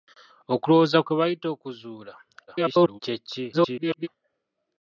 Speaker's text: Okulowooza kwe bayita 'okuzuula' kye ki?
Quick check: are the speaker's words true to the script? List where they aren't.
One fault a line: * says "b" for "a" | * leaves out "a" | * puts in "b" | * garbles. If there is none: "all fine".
* garbles
* garbles